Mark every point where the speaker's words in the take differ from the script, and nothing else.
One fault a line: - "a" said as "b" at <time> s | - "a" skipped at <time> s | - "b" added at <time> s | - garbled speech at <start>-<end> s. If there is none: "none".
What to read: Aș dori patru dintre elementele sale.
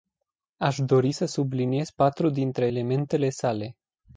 - "să subliniez" added at 1.1 s